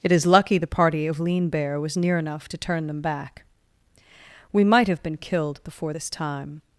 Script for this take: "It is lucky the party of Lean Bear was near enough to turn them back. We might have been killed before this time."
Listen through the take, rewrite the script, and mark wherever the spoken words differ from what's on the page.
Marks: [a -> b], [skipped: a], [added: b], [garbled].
"It is lucky the party of Lean Bear was near enough to turn them back. We might have been killed before this time."